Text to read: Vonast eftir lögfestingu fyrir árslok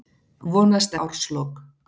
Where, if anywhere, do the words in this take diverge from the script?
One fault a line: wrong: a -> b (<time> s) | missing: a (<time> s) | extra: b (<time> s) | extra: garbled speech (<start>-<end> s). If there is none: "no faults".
missing: eftir lögfestingu fyrir (1.0 s)